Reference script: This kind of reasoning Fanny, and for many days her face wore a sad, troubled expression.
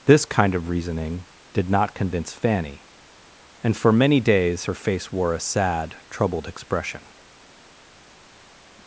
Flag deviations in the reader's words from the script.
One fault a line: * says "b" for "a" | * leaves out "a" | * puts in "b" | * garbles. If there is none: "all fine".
* puts in "did not convince"